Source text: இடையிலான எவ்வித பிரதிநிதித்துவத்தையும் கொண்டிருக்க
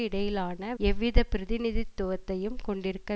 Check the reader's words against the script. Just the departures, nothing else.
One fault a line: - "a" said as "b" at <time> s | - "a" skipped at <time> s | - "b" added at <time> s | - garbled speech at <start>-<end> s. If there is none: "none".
none